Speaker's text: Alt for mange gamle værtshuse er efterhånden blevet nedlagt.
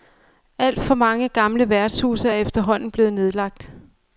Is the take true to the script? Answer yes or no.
yes